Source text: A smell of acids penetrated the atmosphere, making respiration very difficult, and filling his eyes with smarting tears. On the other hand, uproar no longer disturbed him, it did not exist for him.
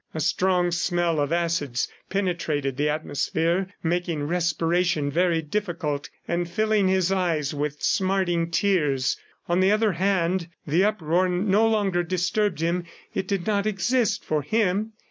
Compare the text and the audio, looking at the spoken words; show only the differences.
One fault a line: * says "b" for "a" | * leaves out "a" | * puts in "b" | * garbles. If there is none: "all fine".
* puts in "strong"
* puts in "the"